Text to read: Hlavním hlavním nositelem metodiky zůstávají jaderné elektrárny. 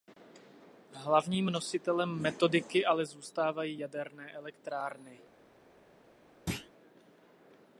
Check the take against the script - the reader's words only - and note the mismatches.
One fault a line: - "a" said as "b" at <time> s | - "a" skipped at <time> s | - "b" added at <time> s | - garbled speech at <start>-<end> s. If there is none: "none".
- "hlavním" skipped at 1.4 s
- "ale" added at 2.9 s